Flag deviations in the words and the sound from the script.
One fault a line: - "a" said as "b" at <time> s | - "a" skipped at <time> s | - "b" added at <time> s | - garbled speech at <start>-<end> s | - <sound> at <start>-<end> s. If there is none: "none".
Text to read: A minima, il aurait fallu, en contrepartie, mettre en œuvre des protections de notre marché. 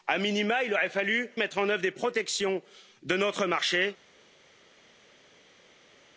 - "en contrepartie" skipped at 1.3 s